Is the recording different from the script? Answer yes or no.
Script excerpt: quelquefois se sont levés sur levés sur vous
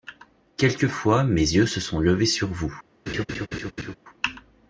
yes